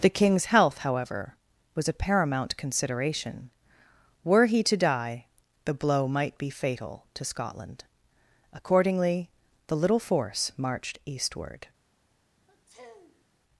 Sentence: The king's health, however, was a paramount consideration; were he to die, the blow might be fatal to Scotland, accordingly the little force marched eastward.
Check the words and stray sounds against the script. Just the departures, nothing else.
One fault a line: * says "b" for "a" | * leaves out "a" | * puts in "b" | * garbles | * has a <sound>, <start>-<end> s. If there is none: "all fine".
* has a sniff, 12.5-13.3 s